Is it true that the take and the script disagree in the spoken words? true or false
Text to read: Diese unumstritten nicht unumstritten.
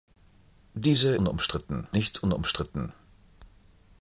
false